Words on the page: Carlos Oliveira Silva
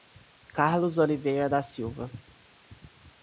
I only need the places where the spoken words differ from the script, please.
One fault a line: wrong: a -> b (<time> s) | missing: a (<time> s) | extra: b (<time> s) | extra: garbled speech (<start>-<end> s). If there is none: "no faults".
extra: da (1.5 s)